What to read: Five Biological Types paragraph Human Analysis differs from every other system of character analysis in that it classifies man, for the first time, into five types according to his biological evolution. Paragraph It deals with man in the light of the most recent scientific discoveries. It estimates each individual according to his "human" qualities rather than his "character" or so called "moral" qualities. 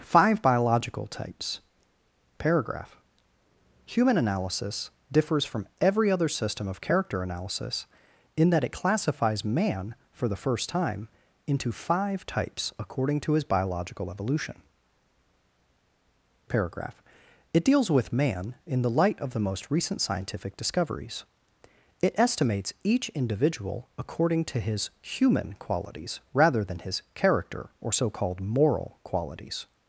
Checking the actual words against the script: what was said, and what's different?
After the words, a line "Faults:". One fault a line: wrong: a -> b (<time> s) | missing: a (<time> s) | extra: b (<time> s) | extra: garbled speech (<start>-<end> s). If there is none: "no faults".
Five Biological Types paragraph Human Analysis differs from every other system of character analysis in that it classifies man, for the first time, into five types according to his biological evolution. Paragraph It deals with man in the light of the most recent scientific discoveries. It estimates each individual according to his "human" qualities rather than his "character" or so called "moral" qualities.
Faults:
no faults